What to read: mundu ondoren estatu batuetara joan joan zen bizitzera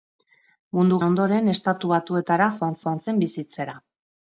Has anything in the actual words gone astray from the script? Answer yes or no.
no